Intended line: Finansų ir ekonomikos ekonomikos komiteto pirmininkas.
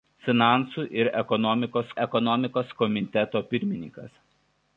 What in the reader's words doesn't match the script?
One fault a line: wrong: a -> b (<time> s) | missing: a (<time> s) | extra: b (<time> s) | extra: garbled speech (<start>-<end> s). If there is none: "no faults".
no faults